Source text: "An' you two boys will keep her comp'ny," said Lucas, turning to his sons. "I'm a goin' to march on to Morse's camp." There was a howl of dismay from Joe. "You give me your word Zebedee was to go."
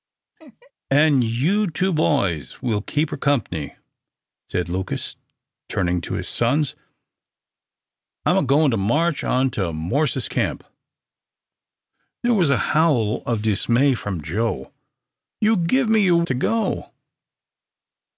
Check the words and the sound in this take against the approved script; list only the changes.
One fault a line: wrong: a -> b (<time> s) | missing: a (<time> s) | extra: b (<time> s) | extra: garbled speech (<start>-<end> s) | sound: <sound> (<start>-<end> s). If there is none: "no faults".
sound: laugh (0.4-0.7 s)
missing: word Zebedee was (16.2 s)